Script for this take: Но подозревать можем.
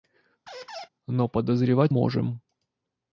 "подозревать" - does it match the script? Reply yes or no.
yes